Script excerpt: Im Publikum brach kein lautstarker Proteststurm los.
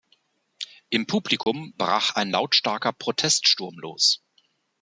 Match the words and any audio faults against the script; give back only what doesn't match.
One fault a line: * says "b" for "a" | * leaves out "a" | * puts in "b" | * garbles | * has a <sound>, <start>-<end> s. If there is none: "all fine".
* has a dropout, 1.4-1.5 s
* says "ein" for "kein"